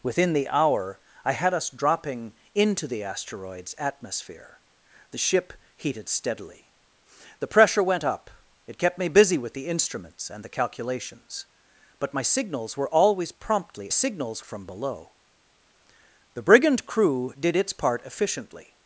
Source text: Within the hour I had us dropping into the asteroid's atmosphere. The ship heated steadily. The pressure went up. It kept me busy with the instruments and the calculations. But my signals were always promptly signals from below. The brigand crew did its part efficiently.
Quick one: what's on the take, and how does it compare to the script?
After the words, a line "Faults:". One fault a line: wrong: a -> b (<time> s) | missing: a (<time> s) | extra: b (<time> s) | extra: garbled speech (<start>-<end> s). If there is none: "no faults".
Within the hour I had us dropping into the asteroid's atmosphere. The ship heated steadily. The pressure went up. It kept me busy with the instruments and the calculations. But my signals were always promptly signals from below. The brigand crew did its part efficiently.
Faults:
no faults